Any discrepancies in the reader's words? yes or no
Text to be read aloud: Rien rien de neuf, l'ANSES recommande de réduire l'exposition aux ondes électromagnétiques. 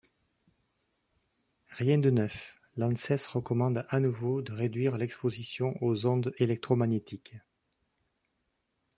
yes